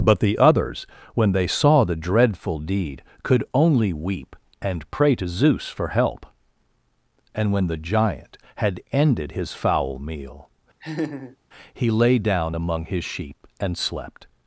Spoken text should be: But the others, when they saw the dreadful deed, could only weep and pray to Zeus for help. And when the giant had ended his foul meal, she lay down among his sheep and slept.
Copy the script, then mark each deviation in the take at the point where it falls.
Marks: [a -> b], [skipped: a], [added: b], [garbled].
But the others, when they saw the dreadful deed, could only weep and pray to Zeus for help. And when the giant had ended his foul meal, [she -> he] lay down among his sheep and slept.